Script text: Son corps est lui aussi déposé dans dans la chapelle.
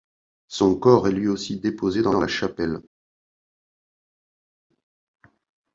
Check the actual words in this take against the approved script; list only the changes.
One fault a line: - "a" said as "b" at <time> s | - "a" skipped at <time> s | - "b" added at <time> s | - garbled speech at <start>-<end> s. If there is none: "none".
none